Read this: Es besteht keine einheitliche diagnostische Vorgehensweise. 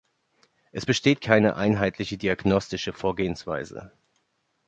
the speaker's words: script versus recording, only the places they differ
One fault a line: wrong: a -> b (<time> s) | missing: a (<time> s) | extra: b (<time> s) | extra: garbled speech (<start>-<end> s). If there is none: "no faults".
no faults